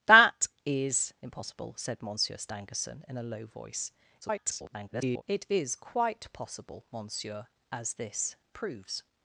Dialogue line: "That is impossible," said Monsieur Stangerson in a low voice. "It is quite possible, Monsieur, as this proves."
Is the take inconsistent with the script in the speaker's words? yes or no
yes